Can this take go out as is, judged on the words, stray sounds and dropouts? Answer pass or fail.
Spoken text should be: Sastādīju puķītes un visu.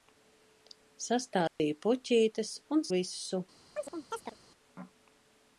fail